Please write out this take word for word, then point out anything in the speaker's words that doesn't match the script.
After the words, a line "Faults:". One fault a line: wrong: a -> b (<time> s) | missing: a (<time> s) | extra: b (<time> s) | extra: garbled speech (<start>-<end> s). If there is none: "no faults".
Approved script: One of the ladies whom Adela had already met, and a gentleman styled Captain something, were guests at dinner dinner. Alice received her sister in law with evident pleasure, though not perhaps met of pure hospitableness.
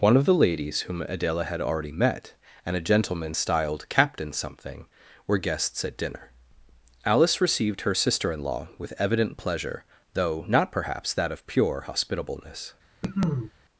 One of the ladies whom Adela had already met, and a gentleman styled Captain something, were guests at dinner. Alice received her sister in law with evident pleasure, though not perhaps that of pure hospitableness.
Faults:
missing: dinner (6.3 s)
wrong: met -> that (11.1 s)